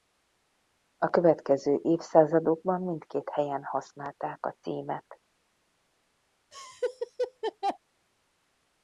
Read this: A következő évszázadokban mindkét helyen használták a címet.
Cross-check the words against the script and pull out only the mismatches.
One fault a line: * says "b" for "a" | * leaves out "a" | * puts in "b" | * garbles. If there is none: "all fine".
all fine